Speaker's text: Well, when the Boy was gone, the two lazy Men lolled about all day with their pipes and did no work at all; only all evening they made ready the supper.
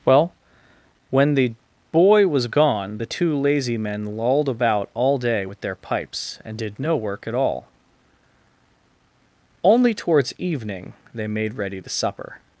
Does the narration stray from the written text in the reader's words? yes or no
yes